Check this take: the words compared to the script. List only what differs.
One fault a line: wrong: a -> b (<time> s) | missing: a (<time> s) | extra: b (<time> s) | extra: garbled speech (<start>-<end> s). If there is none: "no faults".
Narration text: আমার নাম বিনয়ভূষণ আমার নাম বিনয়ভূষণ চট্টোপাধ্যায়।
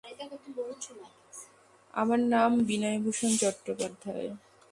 missing: আমার নাম বিনয়ভূষণ (3.3 s)